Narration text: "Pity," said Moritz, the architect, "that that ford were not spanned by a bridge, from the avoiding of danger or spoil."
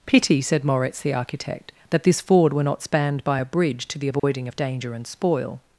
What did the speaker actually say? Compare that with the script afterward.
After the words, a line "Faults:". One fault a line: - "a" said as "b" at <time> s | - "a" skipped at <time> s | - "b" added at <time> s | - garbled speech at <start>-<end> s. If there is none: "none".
"Pity," said Moritz, the architect, "that this ford were not spanned by a bridge, to the avoiding of danger and spoil."
Faults:
- "that" said as "this" at 2.0 s
- "from" said as "to" at 3.9 s
- "or" said as "and" at 4.9 s